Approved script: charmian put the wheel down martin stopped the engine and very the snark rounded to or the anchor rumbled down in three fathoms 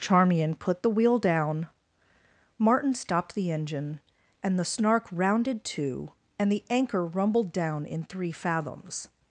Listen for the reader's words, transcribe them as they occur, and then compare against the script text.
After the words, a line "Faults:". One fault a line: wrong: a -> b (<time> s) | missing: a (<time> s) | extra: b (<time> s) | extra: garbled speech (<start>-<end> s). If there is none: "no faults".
charmian put the wheel down martin stopped the engine and the snark rounded to and the anchor rumbled down in three fathoms
Faults:
missing: very (4.6 s)
wrong: or -> and (6.4 s)